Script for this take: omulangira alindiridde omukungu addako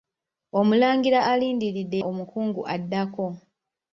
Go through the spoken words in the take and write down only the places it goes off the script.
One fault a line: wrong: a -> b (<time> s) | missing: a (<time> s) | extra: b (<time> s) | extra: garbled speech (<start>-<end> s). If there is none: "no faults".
no faults